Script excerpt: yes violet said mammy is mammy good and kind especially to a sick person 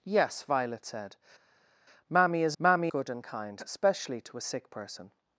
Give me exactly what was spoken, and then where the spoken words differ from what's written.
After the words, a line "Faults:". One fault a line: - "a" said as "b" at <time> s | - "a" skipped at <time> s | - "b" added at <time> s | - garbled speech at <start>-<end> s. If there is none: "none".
yes violet said mammy is mammy good and kind especially to a sick person
Faults:
none